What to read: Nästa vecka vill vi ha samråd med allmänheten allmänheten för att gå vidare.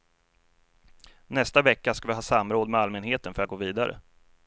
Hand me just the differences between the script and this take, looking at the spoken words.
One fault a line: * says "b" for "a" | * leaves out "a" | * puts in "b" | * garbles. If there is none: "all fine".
* says "ska" for "vill"
* leaves out "allmänheten"